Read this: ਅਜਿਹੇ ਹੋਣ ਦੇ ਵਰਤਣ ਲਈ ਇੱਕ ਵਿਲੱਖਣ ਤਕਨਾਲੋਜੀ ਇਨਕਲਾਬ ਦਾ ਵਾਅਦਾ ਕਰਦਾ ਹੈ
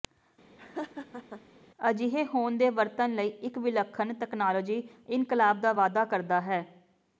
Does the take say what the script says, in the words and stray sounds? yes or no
no